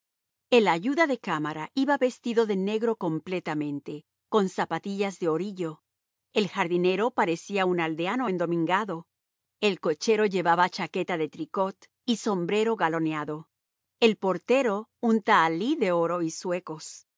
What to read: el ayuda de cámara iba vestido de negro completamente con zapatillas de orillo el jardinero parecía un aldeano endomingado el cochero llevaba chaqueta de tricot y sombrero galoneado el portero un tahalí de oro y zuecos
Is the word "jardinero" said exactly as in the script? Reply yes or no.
yes